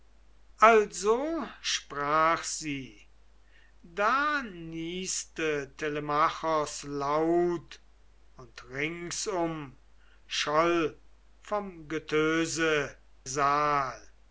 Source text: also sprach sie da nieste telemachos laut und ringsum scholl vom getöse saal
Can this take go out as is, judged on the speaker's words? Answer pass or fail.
pass